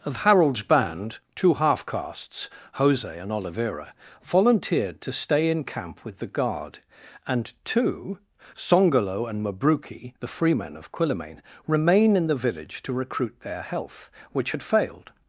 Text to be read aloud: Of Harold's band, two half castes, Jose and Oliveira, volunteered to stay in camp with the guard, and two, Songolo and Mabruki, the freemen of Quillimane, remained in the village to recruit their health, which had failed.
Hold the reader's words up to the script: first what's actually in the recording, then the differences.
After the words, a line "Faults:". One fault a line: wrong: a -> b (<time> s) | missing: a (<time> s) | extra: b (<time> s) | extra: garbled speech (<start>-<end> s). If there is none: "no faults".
Of Harold's band, two half castes, Jose and Oliveira, volunteered to stay in camp with the guard, and two, Songolo and Mabruki, the freemen of Quillimane, remain in the village to recruit their health, which had failed.
Faults:
wrong: remained -> remain (11.6 s)